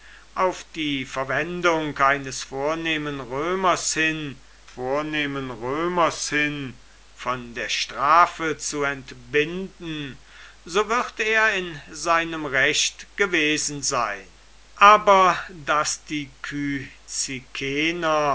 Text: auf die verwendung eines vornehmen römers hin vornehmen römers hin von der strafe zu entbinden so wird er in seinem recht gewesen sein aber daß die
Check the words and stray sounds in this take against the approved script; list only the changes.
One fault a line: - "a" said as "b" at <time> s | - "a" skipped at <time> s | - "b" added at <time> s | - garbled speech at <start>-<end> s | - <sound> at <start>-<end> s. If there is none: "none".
none